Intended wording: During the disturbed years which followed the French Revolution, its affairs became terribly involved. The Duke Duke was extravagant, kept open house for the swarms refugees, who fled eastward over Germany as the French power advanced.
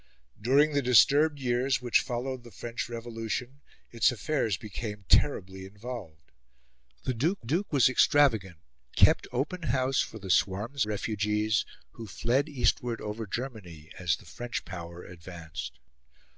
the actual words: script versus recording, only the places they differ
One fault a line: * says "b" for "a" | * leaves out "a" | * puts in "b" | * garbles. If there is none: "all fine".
all fine